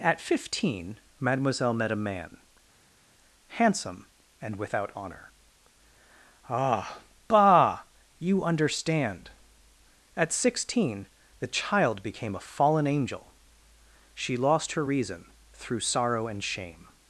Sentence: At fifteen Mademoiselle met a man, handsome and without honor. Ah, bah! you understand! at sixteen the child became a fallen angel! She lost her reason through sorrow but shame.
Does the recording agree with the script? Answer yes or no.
no